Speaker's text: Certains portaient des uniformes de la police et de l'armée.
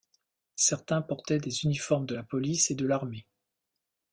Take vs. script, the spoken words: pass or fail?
pass